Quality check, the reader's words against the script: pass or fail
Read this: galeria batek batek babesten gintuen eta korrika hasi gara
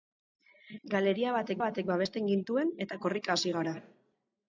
pass